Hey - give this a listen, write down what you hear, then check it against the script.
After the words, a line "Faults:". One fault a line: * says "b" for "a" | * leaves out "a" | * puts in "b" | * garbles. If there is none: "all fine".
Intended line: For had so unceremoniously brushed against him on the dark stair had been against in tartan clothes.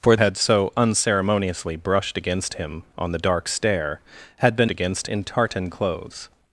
For had so unceremoniously brushed against him on the dark stair had been against in tartan clothes.
Faults:
all fine